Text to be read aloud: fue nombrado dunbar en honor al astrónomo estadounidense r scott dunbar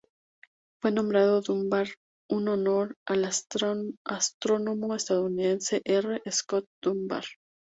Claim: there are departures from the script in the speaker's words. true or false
false